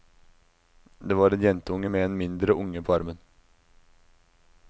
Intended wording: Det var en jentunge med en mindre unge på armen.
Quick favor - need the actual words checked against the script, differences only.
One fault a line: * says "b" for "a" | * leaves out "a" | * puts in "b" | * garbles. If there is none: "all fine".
all fine